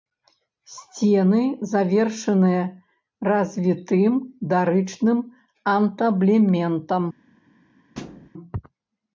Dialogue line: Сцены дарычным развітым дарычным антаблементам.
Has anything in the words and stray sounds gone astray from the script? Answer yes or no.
yes